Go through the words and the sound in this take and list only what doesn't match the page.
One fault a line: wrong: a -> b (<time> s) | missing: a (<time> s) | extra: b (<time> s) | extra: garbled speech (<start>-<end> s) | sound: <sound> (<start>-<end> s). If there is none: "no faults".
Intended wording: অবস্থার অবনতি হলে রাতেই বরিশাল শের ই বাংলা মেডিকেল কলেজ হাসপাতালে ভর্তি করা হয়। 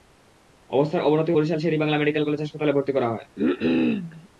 missing: হলে রাতেই (1.3 s)
sound: cough (3.4-4.3 s)